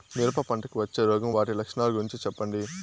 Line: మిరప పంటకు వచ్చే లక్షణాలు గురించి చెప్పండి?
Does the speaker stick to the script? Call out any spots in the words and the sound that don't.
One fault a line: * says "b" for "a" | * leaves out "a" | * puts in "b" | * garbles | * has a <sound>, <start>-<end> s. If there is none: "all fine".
* puts in "రోగం వాటి"